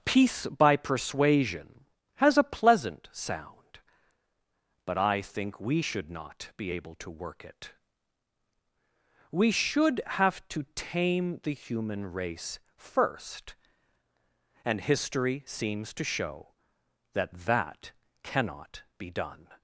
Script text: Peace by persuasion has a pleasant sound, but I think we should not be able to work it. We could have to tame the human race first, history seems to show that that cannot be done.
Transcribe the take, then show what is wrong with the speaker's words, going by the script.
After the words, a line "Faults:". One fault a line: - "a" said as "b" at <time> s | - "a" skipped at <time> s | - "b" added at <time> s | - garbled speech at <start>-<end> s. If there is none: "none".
Peace by persuasion has a pleasant sound, but I think we should not be able to work it. We should have to tame the human race first, and history seems to show that that cannot be done.
Faults:
- "could" said as "should" at 9.5 s
- "and" added at 14.6 s